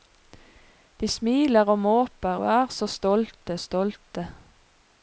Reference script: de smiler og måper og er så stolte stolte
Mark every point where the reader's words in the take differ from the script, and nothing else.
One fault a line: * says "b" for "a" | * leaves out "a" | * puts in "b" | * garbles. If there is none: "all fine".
all fine